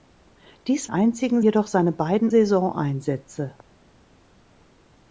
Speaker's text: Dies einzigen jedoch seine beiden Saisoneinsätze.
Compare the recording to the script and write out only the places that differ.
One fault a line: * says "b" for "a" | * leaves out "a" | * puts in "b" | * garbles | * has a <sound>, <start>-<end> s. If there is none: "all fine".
all fine